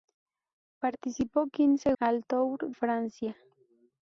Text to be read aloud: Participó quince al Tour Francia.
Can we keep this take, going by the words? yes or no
yes